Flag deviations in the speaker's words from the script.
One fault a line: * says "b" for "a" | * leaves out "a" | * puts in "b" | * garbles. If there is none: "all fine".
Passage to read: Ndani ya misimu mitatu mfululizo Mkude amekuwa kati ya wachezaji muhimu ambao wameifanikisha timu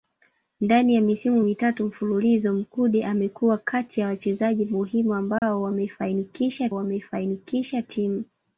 * puts in "wameifanikisha"